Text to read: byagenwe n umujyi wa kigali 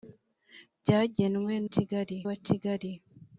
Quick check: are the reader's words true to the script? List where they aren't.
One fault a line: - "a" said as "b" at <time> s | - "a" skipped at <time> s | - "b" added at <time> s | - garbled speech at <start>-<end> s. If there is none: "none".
- "umujyi" said as "kigali" at 1.7 s